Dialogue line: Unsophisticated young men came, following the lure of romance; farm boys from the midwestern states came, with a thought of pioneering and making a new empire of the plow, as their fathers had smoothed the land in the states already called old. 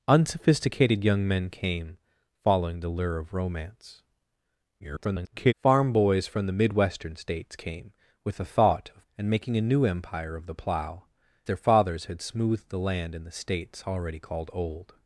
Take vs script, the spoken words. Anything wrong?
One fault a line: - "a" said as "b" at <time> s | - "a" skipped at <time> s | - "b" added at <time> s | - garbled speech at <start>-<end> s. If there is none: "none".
- garbled speech at 4.8-5.5 s
- "pioneering" skipped at 9.1 s
- "as" skipped at 11.0 s